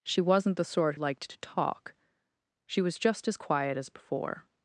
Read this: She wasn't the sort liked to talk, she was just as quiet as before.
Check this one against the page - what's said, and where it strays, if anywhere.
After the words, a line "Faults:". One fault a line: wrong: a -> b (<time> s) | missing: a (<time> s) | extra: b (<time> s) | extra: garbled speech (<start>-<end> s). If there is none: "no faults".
She wasn't the sort liked to talk, she was just as quiet as before.
Faults:
no faults